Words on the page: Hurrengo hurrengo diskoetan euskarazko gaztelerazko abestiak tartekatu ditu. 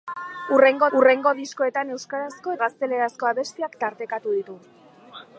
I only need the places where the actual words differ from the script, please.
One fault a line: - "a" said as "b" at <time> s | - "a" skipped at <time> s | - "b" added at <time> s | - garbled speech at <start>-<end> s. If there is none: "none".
none